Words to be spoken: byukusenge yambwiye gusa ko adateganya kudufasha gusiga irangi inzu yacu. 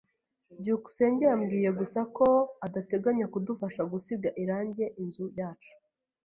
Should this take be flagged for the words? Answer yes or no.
no